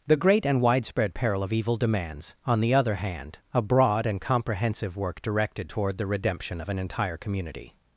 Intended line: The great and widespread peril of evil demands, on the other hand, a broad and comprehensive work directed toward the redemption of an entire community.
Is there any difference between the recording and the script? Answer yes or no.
no